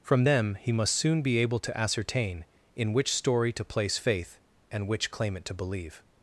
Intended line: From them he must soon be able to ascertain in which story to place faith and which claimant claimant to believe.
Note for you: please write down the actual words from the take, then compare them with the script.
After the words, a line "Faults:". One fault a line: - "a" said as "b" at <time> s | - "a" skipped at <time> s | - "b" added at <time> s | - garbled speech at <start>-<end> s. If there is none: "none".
From them he must soon be able to ascertain in which story to place faith and which claimant to believe.
Faults:
- "claimant" skipped at 5.4 s